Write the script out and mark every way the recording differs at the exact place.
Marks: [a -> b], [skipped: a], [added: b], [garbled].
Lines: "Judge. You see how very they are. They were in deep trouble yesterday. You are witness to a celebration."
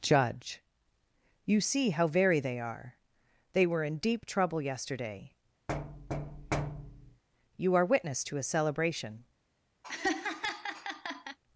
"Judge. You see how very they are. They were in deep trouble yesterday. You are witness to a celebration."